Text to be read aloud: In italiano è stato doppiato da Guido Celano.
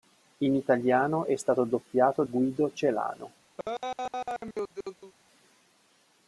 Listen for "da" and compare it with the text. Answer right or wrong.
wrong